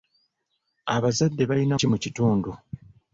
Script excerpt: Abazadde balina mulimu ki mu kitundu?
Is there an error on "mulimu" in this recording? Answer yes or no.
yes